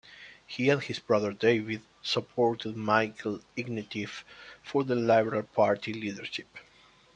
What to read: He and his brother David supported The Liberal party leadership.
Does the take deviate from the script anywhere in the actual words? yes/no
yes